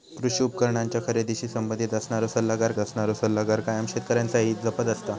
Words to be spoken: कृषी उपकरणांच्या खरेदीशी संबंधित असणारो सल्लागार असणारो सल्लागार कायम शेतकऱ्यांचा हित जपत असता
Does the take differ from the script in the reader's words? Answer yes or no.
no